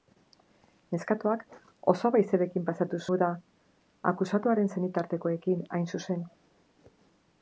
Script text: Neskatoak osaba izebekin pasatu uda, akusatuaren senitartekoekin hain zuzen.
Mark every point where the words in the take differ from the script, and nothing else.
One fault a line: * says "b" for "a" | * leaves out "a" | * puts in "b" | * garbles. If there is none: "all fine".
all fine